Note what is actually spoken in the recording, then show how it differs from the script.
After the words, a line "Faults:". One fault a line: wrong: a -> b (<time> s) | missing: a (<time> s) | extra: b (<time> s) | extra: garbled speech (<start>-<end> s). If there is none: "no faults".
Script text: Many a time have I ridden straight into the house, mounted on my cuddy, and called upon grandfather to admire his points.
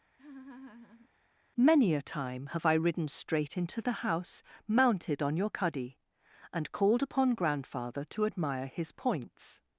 Many a time have I ridden straight into the house, mounted on your cuddy, and called upon grandfather to admire his points.
Faults:
wrong: my -> your (5.4 s)